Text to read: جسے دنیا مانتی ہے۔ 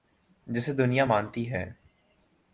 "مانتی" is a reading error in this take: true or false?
false